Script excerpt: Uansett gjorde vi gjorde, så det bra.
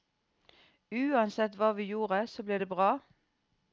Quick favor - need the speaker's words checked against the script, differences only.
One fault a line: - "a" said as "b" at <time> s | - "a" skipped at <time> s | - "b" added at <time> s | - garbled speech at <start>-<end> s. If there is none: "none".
- "gjorde" said as "hva" at 1.6 s
- "ble" added at 2.4 s